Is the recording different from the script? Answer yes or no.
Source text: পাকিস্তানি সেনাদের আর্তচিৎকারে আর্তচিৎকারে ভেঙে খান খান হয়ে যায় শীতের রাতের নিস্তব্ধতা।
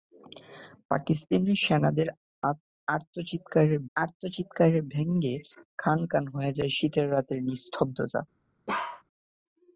no